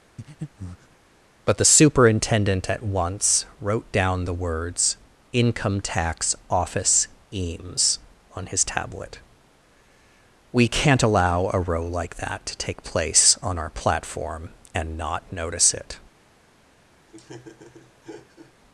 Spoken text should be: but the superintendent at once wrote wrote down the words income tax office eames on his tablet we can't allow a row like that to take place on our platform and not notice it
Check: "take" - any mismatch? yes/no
no